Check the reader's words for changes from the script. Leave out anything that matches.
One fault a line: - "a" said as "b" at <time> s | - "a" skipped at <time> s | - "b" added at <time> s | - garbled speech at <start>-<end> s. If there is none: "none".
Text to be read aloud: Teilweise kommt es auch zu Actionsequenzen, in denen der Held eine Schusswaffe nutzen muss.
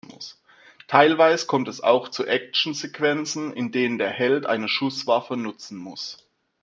none